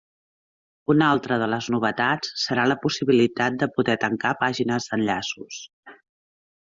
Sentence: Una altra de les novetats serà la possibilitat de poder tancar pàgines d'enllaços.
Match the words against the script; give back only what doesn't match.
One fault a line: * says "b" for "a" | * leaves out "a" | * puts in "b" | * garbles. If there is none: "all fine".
all fine